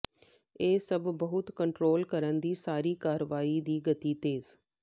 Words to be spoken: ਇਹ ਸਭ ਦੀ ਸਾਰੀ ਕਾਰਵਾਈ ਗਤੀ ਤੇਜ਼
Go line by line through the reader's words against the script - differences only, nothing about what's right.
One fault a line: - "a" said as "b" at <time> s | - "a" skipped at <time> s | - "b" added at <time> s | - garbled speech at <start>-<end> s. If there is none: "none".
- "ਬਹੁਤ ਕੰਟਰੋਲ ਕਰਨ" added at 1.1 s
- "ਦੀ" added at 3.6 s